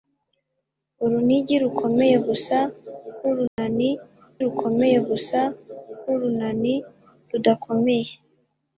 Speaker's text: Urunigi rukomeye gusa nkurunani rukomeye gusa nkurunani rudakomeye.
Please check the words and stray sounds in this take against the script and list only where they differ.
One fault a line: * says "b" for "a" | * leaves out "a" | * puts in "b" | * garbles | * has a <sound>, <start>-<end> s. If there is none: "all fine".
* has a dropout, 3.5-3.6 s